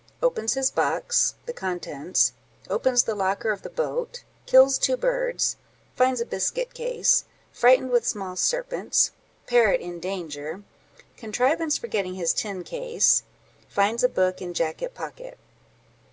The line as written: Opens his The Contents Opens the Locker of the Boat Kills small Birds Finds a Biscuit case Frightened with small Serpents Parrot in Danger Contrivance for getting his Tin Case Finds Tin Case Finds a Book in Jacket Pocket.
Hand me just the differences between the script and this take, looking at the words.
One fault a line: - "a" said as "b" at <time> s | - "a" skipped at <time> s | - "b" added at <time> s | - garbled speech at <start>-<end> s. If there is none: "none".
- "Box" added at 0.7 s
- "small" said as "two" at 4.8 s
- "Tin Case Finds" skipped at 14.0 s